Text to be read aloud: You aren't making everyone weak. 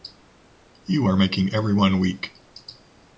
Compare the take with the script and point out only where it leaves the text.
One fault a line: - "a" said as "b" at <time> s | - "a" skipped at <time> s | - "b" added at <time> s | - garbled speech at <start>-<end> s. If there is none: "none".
- "aren't" said as "are" at 1.0 s